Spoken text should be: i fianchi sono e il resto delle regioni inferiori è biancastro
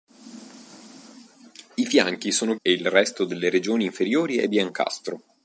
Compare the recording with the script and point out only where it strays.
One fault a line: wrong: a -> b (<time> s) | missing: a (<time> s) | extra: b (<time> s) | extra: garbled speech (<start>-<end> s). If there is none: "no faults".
no faults